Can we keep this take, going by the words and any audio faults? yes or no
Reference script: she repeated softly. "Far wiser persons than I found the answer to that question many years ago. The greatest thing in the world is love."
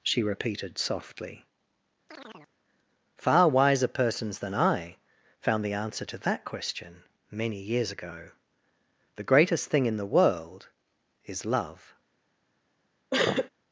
no